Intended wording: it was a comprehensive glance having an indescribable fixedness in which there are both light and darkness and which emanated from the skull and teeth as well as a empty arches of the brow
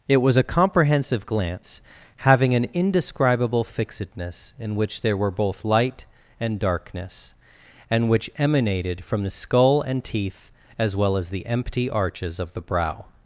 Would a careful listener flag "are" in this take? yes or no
yes